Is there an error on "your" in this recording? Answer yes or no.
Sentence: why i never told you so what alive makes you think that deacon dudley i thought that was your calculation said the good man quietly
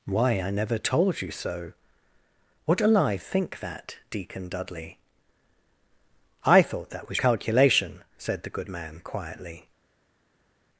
yes